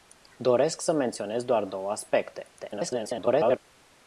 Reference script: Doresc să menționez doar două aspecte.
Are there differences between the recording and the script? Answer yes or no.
yes